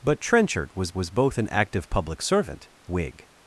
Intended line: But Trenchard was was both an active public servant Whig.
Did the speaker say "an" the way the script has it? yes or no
yes